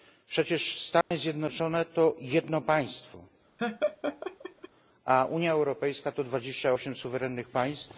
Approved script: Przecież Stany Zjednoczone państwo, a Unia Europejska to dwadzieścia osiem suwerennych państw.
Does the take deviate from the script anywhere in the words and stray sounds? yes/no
yes